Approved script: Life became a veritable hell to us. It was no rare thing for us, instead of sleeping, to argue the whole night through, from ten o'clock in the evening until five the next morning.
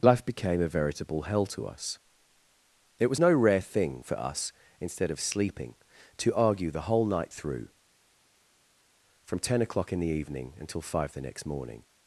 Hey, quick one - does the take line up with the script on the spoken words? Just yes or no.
yes